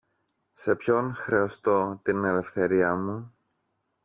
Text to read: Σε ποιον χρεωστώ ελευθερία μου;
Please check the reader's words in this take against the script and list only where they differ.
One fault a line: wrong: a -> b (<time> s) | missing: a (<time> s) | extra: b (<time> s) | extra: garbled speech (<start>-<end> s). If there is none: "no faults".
extra: την (2.0 s)